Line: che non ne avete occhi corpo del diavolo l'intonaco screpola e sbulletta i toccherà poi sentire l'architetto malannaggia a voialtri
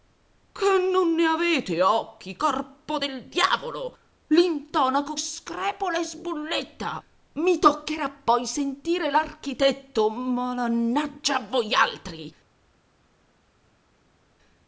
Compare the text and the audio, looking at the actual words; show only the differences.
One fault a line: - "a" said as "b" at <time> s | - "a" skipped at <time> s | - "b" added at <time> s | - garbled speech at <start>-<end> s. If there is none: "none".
none